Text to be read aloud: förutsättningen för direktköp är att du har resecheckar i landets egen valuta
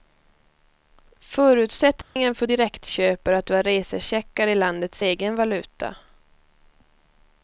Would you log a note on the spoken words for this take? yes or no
no